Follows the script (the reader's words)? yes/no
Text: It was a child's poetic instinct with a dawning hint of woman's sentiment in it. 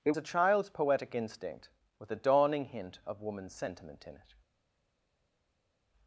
no